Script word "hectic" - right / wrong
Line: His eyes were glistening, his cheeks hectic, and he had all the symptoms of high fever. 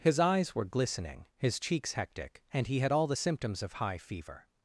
right